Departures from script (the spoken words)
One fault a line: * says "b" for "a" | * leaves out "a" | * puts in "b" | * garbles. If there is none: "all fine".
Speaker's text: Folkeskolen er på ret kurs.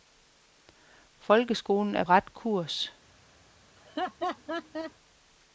* leaves out "på"